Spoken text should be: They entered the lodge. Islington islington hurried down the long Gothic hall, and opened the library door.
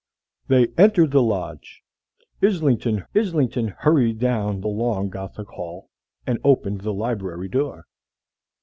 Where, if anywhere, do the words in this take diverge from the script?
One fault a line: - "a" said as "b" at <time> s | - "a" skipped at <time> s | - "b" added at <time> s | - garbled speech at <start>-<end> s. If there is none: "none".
none